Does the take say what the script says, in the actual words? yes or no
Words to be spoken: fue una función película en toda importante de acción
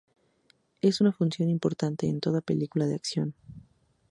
no